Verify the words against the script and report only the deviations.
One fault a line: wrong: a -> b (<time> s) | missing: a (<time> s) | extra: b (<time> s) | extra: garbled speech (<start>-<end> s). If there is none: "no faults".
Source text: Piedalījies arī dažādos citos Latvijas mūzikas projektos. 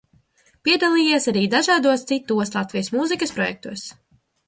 no faults